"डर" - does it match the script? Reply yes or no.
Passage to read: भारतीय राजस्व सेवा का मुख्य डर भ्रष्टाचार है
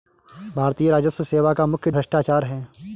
no